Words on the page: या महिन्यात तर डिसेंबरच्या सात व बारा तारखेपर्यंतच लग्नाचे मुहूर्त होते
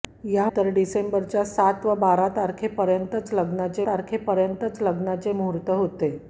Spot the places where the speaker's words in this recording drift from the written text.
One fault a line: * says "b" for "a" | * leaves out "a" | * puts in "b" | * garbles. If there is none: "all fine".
* leaves out "महिन्यात"
* puts in "तारखेपर्यंतच लग्नाचे"